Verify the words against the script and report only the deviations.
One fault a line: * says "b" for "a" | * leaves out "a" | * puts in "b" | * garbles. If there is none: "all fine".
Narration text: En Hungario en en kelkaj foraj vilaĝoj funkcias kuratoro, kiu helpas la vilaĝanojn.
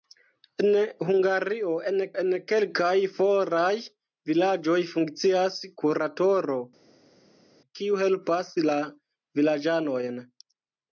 all fine